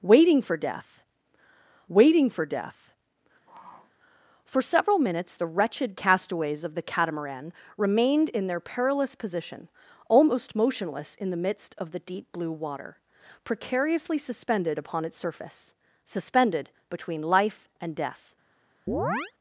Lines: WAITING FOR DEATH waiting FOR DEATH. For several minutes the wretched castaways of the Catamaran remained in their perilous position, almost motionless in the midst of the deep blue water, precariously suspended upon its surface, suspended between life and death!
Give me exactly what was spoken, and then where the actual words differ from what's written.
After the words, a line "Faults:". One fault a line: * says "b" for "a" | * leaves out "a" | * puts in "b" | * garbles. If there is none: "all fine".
WAITING FOR DEATH waiting FOR DEATH. For several minutes the wretched castaways of the Catamaran remained in their perilous position, almost motionless in the midst of the deep blue water, precariously suspended upon its surface, suspended between life and death!
Faults:
all fine